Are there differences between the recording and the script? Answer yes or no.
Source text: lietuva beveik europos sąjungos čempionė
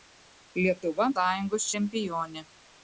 yes